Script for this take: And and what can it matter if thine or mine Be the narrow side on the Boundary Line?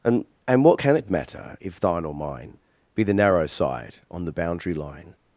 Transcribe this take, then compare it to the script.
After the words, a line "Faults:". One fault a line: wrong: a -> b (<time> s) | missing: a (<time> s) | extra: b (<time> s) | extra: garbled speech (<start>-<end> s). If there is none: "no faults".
And and what can it matter if thine or mine Be the narrow side on the Boundary Line?
Faults:
no faults